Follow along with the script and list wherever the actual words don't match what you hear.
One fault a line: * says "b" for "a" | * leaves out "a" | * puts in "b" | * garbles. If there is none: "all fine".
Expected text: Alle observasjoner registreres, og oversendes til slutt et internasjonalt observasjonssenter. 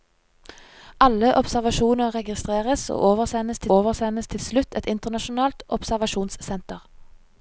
* puts in "oversendes til"